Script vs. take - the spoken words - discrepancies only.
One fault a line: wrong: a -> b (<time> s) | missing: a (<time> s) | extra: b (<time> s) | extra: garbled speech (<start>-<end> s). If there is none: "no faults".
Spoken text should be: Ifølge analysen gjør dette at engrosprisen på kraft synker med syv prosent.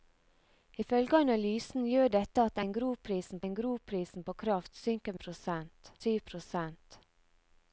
extra: engrosprisen (3.4 s)
wrong: med -> prosent (5.2 s)